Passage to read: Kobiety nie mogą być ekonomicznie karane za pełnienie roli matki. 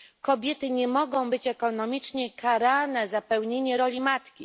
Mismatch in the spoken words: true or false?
false